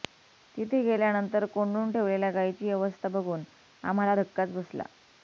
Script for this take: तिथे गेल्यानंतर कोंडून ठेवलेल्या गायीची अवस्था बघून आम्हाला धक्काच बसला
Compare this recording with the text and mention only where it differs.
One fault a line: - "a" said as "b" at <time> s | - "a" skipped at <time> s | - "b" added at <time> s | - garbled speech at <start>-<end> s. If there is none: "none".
none